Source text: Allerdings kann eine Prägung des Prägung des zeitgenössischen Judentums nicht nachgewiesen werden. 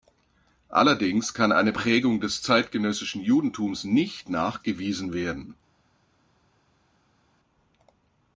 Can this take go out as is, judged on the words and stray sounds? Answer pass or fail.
fail